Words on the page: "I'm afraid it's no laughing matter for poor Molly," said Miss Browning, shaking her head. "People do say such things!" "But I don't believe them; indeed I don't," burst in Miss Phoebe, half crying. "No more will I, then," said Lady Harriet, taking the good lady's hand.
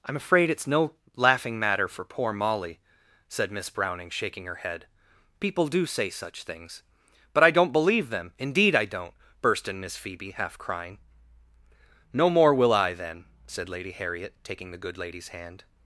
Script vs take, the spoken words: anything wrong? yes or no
no